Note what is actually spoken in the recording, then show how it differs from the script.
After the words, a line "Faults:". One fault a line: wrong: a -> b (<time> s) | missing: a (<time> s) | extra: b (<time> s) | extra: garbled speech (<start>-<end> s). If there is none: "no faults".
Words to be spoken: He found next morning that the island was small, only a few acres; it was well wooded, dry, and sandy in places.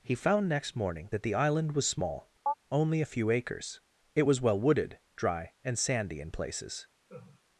He found next morning that the island was small, only a few acres; it was well wooded, dry, and sandy in places.
Faults:
no faults